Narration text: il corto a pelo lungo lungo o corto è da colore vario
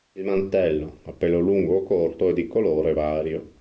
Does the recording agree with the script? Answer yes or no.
no